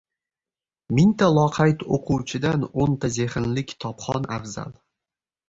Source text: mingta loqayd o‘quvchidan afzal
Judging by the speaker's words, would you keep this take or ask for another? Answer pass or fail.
fail